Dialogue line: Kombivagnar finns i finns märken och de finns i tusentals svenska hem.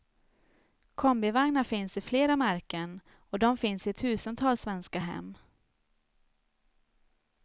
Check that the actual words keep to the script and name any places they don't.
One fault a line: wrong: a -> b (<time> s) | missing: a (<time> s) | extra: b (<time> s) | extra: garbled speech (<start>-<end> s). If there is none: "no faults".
wrong: finns -> flera (2.0 s)